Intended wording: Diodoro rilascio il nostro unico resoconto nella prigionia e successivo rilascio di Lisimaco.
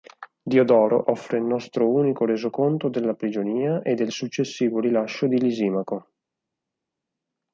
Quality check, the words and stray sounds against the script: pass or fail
fail